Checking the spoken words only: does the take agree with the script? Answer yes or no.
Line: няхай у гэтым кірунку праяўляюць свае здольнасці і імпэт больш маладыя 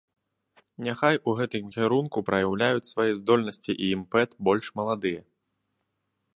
yes